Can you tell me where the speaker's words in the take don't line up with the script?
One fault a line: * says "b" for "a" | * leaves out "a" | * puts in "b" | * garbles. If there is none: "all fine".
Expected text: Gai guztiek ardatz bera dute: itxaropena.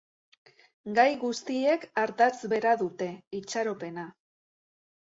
all fine